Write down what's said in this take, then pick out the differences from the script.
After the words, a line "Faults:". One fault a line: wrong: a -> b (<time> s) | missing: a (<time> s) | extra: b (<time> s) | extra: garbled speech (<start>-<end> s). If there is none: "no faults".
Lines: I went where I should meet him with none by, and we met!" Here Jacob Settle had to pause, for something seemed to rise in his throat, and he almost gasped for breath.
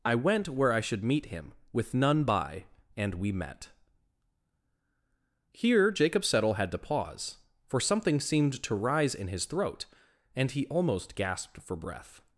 I went where I should meet him with none by, and we met!" Here Jacob Settle had to pause, for something seemed to rise in his throat, and he almost gasped for breath.
Faults:
no faults